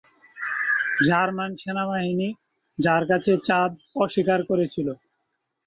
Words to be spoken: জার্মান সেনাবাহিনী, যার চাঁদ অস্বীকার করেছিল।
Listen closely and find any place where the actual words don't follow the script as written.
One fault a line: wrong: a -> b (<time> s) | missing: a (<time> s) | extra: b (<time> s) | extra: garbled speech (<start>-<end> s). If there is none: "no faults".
extra: কাছে (3.1 s)